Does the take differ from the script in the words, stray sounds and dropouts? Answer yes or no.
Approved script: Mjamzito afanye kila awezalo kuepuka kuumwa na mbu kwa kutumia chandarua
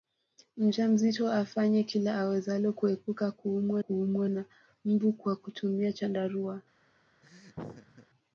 yes